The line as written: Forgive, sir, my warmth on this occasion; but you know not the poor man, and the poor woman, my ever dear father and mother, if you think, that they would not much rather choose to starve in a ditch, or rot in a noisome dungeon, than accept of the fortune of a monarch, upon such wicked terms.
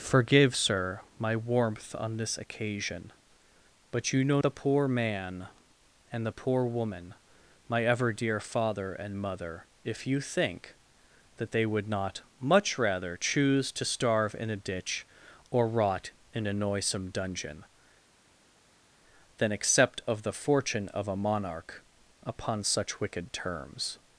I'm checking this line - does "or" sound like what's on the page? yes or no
yes